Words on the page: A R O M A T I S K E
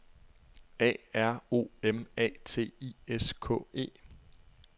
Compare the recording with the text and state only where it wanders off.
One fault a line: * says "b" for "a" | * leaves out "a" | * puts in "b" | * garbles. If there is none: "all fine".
all fine